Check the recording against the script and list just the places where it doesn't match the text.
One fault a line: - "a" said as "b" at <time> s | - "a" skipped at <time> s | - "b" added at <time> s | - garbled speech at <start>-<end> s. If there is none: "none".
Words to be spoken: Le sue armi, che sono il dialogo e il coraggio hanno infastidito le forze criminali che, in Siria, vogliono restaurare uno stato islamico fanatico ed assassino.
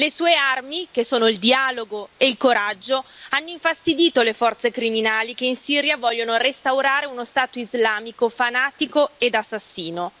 none